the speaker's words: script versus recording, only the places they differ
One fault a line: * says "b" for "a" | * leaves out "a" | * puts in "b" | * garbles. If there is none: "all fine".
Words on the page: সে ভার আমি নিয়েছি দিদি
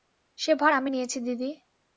all fine